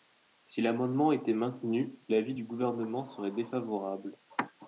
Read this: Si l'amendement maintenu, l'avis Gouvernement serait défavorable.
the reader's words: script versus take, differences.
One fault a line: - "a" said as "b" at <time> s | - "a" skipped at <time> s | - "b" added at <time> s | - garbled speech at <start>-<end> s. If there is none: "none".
- "était" added at 1.1 s
- "du" added at 2.3 s